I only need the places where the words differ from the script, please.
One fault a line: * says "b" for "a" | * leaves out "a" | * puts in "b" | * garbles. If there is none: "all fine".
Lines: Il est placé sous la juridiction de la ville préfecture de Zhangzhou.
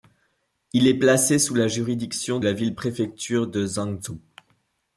* leaves out "de"